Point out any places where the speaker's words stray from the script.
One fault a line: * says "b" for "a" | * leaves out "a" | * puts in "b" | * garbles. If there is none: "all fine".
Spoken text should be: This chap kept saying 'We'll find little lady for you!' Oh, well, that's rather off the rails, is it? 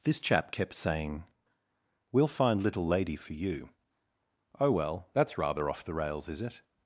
all fine